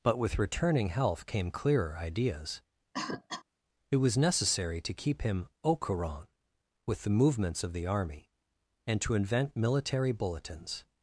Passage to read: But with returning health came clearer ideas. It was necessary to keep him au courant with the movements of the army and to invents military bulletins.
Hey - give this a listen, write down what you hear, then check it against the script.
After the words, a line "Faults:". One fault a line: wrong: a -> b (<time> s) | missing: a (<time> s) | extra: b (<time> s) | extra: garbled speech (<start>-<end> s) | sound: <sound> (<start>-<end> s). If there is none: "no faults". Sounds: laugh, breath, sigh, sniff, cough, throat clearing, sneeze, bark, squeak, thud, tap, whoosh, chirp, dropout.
But with returning health came clearer ideas. It was necessary to keep him au courant with the movements of the army and to invent military bulletins.
Faults:
sound: cough (2.9-3.4 s)
wrong: invents -> invent (9.1 s)